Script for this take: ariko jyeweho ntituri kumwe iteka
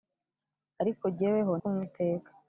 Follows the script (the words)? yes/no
no